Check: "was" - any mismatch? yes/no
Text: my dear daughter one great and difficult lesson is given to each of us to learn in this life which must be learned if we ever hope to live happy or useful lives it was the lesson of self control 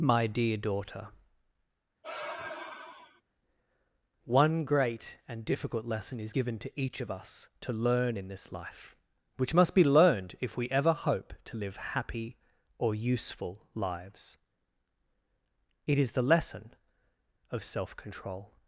yes